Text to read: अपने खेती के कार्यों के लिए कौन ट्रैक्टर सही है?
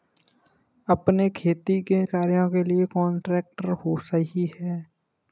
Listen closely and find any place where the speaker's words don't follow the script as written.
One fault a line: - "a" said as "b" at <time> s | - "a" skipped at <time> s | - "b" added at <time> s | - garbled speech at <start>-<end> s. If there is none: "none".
none